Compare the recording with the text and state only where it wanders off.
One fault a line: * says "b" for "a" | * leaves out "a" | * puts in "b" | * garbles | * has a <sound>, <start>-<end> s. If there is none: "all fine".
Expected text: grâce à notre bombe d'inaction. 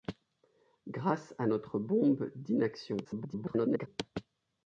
* garbles